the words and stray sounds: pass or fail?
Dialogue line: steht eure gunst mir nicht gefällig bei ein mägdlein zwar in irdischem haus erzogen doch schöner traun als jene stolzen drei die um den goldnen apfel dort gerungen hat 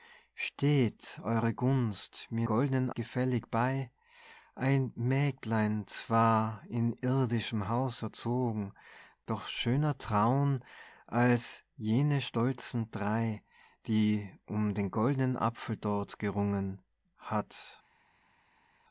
fail